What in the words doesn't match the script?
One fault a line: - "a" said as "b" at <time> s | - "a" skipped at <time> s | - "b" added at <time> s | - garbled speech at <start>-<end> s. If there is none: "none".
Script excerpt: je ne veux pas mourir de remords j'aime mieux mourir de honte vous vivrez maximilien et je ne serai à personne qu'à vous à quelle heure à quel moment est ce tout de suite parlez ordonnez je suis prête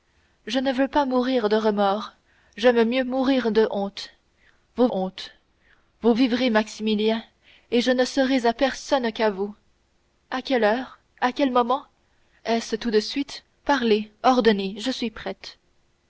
- "honte vous" added at 4.9 s